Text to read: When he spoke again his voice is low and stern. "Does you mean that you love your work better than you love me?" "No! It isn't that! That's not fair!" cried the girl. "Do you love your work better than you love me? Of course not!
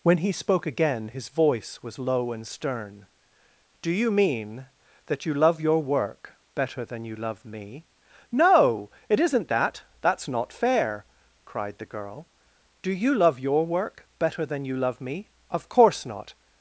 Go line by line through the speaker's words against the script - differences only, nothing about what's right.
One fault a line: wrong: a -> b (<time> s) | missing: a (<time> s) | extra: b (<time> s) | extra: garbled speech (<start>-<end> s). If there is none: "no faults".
wrong: is -> was (1.8 s)
wrong: Does -> Do (3.8 s)